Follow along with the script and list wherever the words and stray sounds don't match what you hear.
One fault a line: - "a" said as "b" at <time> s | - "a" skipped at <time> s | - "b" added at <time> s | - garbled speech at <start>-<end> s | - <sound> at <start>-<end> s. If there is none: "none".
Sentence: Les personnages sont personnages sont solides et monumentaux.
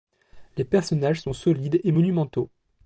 - "personnages sont" skipped at 1.3 s